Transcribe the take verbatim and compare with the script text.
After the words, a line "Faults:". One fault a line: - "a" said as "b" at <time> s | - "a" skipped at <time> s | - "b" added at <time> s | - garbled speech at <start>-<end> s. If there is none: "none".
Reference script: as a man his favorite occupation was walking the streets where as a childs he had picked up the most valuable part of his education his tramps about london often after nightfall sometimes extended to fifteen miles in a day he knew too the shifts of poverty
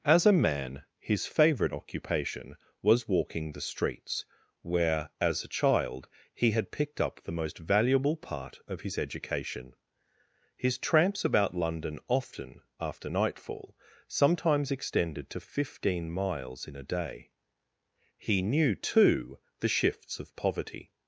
as a man his favorite occupation was walking the streets where as a child he had picked up the most valuable part of his education his tramps about london often after nightfall sometimes extended to fifteen miles in a day he knew too the shifts of poverty
Faults:
- "childs" said as "child" at 5.5 s